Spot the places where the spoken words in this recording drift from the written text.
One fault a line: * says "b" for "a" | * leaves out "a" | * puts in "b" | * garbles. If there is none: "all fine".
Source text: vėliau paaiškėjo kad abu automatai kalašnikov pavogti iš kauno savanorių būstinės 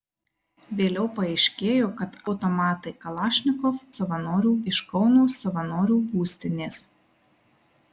* leaves out "abu"
* says "savanorių" for "pavogti"